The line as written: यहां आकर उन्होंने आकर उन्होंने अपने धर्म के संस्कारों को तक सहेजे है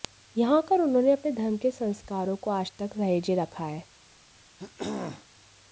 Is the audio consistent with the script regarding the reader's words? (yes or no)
no